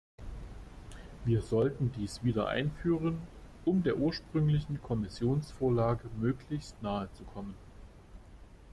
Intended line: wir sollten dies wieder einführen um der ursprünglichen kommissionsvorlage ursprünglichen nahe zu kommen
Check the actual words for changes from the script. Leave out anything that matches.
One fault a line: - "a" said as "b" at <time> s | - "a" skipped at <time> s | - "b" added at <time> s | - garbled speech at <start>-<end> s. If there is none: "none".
- "ursprünglichen" said as "möglichst" at 6.2 s